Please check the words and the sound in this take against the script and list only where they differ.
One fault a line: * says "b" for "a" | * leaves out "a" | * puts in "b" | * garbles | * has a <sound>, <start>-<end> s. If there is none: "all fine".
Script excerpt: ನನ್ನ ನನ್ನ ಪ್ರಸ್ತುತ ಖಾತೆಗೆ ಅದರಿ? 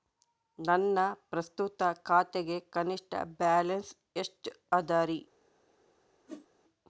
* leaves out "ನನ್ನ"
* puts in "ಕನಿಷ್ಠ ಬ್ಯಾಲೆನ್ಸ್ ಎಷ್ಟು"
* has a whoosh, 6.3-6.5 s